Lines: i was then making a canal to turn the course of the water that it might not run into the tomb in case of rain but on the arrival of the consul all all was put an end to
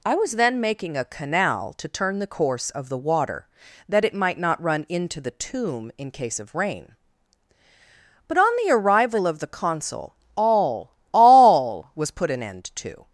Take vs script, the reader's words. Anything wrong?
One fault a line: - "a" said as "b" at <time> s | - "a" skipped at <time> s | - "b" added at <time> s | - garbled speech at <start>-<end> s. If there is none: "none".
none